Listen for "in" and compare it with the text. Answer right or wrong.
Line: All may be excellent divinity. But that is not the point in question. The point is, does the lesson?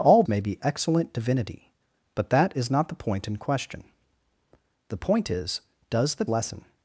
right